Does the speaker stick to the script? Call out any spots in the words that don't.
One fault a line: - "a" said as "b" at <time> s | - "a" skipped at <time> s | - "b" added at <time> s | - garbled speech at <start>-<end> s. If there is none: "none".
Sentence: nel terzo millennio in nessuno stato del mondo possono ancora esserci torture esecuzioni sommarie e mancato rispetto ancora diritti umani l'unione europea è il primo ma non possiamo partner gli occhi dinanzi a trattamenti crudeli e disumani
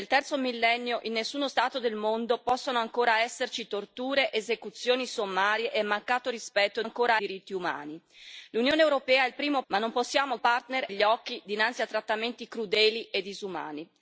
none